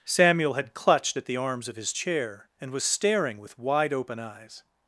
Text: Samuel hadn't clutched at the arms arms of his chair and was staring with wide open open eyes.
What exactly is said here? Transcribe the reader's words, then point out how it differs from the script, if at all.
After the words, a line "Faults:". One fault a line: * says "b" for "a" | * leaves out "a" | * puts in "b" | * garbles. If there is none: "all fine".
Samuel had clutched at the arms of his chair and was staring with wide open eyes.
Faults:
* says "had" for "hadn't"
* leaves out "arms"
* leaves out "open"